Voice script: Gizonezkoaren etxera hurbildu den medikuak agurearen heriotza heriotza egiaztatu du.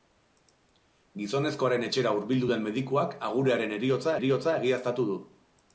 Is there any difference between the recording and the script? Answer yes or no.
no